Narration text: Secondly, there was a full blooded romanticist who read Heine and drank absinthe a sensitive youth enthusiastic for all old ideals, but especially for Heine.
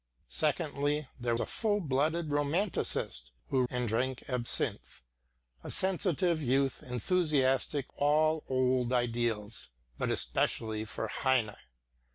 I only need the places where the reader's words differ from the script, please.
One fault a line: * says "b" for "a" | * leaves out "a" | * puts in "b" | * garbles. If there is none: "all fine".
* leaves out "was"
* leaves out "read Heine"
* leaves out "for"